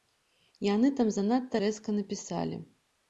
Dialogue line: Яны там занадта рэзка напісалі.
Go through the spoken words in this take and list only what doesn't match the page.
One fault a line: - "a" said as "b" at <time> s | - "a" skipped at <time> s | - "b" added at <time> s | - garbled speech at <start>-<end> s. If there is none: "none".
none